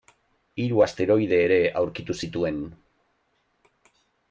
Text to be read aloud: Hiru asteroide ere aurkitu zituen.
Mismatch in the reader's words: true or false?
false